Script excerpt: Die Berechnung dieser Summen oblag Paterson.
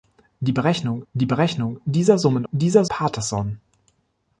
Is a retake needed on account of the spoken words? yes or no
yes